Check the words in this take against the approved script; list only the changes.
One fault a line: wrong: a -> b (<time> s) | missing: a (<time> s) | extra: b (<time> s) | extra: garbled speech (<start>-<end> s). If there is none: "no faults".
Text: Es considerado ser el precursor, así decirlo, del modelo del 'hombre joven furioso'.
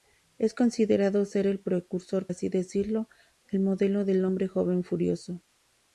no faults